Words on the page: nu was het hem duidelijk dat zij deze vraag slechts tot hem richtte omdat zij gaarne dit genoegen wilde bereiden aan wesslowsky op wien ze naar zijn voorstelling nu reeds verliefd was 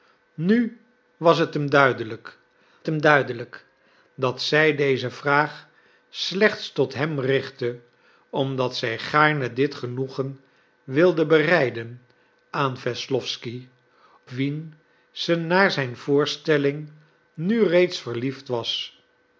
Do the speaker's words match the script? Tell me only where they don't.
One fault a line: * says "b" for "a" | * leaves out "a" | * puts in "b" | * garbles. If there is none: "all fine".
* puts in "hem duidelijk"
* leaves out "op"